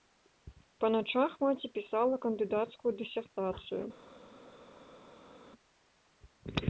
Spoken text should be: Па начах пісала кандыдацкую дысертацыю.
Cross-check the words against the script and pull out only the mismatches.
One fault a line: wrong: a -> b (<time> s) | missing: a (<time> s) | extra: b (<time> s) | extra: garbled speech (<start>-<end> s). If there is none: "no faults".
extra: маці (1.4 s)